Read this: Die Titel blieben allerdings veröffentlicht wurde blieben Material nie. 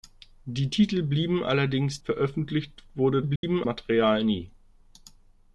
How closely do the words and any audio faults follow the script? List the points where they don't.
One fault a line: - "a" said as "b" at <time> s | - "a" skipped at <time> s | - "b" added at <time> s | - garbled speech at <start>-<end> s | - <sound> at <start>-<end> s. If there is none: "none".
- dropout at 3.4-3.4 s